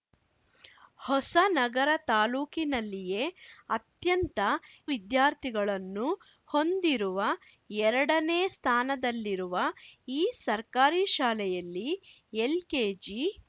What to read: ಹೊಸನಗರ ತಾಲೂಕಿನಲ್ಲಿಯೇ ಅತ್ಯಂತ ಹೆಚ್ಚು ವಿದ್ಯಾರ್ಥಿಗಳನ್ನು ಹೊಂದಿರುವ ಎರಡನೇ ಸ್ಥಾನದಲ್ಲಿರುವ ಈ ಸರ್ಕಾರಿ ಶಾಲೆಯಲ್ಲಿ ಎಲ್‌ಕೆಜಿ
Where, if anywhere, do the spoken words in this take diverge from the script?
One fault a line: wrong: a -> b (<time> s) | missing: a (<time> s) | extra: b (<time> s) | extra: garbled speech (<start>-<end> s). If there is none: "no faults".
missing: ಹೆಚ್ಚು (4.4 s)